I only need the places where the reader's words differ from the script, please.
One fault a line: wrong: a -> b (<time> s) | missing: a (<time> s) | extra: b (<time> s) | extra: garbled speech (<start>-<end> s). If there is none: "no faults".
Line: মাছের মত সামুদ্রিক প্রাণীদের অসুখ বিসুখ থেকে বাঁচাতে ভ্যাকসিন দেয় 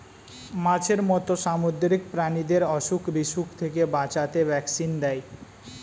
no faults